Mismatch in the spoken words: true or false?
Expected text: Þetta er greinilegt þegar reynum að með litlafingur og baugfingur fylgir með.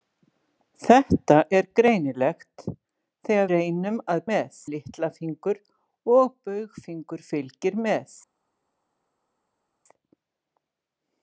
false